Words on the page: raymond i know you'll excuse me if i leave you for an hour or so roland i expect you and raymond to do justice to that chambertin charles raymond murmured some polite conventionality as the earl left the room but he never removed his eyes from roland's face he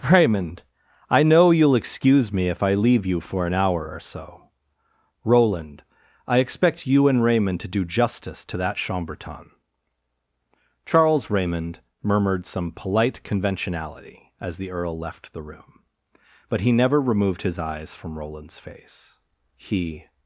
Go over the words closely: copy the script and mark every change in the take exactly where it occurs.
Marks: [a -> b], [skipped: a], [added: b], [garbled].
raymond i know you'll excuse me if i leave you for an hour or so roland i expect you and raymond to do justice to that chambertin charles raymond murmured some polite conventionality as the earl left the room but he never removed his eyes from roland's face he